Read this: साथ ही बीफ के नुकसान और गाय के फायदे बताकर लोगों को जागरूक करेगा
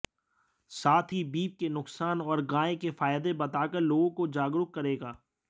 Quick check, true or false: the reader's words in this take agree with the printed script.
true